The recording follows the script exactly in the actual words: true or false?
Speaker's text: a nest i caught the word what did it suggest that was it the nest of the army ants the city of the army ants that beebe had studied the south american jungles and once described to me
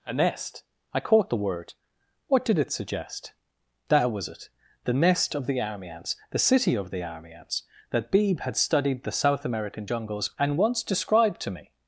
true